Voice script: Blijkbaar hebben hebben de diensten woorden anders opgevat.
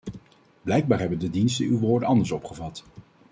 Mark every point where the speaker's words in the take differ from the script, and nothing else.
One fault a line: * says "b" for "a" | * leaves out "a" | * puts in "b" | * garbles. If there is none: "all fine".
* leaves out "hebben"
* puts in "uw"